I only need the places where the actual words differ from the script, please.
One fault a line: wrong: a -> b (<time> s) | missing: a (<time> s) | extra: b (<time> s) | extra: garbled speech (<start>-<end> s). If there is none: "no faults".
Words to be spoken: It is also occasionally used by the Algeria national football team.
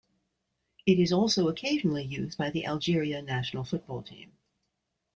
no faults